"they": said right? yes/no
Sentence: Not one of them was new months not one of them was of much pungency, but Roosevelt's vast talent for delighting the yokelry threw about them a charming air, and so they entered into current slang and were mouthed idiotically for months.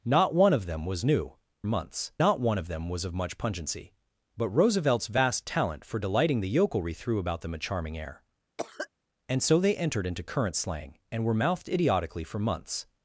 yes